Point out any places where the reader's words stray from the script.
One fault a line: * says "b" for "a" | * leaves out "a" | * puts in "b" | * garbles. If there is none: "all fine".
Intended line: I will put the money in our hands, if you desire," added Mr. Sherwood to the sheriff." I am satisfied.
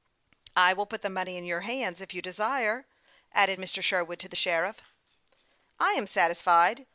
* says "your" for "our"